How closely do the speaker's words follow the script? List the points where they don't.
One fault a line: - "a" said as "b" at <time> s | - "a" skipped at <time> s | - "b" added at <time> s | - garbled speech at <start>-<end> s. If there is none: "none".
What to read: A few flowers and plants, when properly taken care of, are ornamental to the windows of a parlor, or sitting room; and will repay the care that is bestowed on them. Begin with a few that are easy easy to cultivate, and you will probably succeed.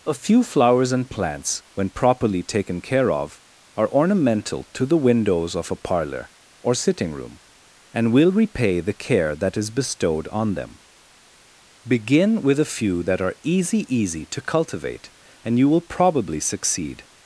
none